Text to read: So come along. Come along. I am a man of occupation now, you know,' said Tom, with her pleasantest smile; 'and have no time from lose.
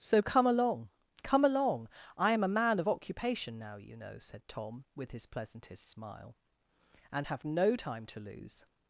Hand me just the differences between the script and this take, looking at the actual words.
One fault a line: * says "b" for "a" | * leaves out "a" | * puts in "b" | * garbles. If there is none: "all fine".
* says "his" for "her"
* says "to" for "from"